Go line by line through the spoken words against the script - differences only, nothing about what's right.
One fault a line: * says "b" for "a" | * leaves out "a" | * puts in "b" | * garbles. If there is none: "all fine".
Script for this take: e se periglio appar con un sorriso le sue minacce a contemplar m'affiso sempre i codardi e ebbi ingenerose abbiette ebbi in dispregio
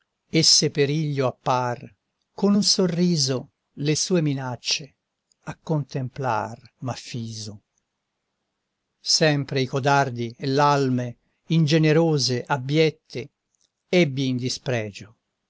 * says "l'alme" for "ebbi"